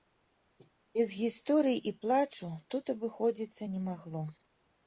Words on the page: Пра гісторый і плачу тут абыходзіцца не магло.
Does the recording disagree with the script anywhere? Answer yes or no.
yes